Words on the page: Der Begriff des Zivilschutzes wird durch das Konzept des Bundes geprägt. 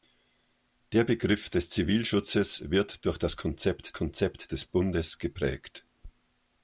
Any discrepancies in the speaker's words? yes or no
yes